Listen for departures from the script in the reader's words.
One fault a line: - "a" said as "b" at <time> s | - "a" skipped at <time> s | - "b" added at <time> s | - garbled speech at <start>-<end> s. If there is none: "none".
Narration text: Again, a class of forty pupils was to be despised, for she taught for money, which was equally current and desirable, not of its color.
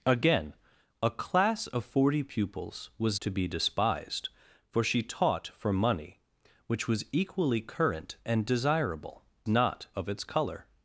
none